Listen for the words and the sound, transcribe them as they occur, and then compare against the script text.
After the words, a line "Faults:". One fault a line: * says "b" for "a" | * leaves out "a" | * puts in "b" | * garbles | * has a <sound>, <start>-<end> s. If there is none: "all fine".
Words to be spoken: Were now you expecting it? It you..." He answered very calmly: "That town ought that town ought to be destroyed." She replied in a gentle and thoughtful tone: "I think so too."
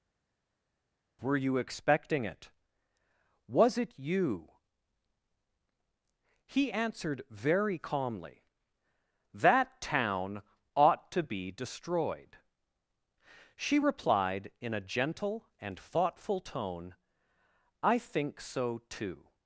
Were you expecting it? Was it you..." He answered very calmly: "That town ought to be destroyed." She replied in a gentle and thoughtful tone: "I think so too."
Faults:
* leaves out "now"
* puts in "Was"
* leaves out "that town ought"